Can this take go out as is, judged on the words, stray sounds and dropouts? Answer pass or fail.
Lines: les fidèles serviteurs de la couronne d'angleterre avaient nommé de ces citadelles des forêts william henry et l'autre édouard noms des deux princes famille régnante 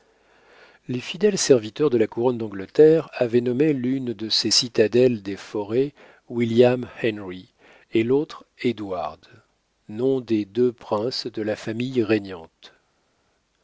fail